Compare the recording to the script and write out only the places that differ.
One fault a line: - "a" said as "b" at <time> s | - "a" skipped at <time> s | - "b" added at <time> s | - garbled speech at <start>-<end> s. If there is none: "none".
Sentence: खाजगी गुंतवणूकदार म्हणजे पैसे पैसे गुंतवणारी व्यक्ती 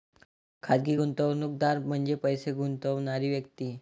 - "पैसे" skipped at 2.5 s